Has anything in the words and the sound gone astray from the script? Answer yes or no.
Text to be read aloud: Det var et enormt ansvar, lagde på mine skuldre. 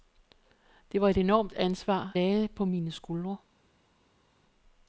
no